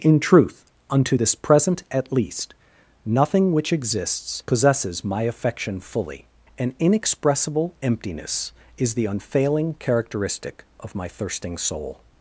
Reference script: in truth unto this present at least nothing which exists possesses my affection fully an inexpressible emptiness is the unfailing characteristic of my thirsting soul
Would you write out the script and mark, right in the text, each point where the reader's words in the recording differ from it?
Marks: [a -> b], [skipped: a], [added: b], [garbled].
in truth unto this present at least nothing which exists possesses my affection fully an inexpressible emptiness is the unfailing characteristic of my thirsting soul